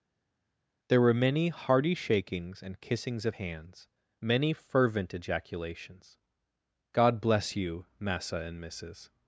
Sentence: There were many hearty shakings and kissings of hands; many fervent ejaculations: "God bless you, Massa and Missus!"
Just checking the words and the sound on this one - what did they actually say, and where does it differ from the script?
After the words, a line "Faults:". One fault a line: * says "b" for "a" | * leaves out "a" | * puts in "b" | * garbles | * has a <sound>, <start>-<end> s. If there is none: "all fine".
There were many hearty shakings and kissings of hands; many fervent ejaculations: "God bless you, Massa and Missus!"
Faults:
all fine